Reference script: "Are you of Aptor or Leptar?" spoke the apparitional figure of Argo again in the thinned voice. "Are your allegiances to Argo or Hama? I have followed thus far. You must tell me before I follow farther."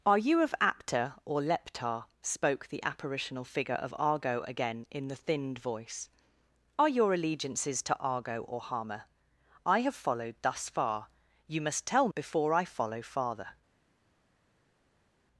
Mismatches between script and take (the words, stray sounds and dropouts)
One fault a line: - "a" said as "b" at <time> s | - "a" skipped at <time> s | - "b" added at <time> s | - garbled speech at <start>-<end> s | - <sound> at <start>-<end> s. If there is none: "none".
- "me" skipped at 12.1 s